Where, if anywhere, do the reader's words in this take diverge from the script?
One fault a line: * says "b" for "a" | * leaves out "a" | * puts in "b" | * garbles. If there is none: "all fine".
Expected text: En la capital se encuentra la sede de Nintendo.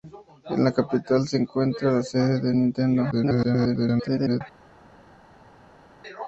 * garbles